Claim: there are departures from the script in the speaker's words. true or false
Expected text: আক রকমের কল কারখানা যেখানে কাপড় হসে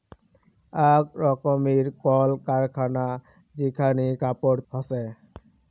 false